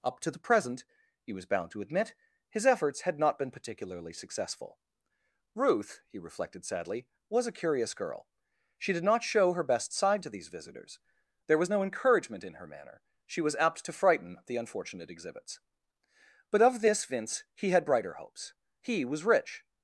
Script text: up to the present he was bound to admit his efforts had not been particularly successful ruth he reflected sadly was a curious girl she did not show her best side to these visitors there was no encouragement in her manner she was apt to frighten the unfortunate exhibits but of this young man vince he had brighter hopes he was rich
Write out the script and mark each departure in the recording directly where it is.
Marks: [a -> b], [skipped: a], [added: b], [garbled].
up to the present he was bound to admit his efforts had not been particularly successful ruth he reflected sadly was a curious girl she did not show her best side to these visitors there was no encouragement in her manner she was apt to frighten the unfortunate exhibits but of this [skipped: young man] vince he had brighter hopes he was rich